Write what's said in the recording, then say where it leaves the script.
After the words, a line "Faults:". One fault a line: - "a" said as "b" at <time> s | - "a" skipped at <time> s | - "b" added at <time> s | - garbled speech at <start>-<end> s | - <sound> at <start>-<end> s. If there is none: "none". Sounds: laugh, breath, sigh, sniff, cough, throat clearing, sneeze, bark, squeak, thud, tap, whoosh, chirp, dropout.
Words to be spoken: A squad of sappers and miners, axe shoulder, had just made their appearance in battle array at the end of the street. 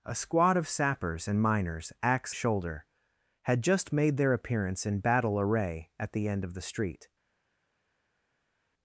A squad of sappers and miners, axe shoulder, had just made their appearance in battle array at the end of the street.
Faults:
none